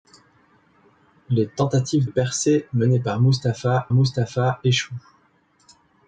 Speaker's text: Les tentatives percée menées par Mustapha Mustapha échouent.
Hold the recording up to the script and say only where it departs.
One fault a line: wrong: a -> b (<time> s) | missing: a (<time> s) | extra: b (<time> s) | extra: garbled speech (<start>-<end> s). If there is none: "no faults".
no faults